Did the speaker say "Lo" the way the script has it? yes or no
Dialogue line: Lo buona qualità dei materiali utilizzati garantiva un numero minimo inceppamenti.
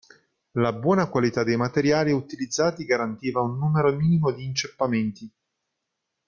no